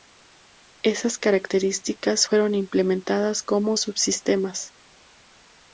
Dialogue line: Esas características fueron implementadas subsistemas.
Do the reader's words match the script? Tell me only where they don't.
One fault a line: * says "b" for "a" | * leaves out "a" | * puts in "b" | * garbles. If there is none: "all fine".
* puts in "como"